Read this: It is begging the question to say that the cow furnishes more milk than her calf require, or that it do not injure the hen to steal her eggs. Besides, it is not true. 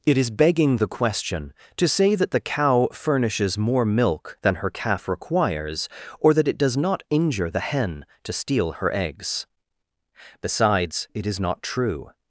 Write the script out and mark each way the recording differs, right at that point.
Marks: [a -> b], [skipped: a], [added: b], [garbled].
It is begging the question to say that the cow furnishes more milk than her calf [require, -> requires] or that it [do -> does] not injure the hen to steal her eggs. Besides, it is not true.